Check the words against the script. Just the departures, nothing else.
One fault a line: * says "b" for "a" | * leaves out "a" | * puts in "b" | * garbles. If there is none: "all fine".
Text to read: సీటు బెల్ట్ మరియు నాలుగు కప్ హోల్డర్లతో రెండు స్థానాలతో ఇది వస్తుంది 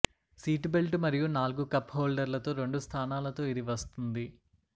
all fine